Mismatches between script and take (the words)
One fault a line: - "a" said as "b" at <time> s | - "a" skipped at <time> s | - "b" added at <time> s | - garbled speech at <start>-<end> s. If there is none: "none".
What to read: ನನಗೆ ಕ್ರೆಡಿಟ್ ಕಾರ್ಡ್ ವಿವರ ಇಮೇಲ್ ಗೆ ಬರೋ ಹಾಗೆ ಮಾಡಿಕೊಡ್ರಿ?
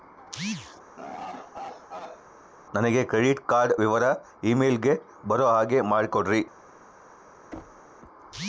none